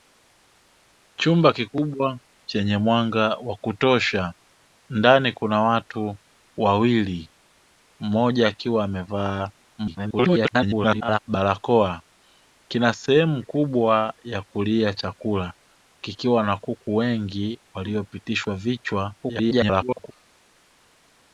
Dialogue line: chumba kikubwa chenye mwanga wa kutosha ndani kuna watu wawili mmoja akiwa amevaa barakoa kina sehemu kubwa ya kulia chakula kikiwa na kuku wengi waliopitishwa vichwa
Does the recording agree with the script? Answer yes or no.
no